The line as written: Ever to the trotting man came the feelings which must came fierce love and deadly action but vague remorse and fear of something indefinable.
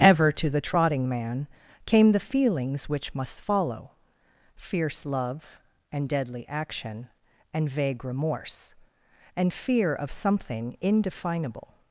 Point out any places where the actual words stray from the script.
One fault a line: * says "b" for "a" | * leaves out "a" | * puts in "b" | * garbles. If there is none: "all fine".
* says "follow" for "came"
* says "and" for "but"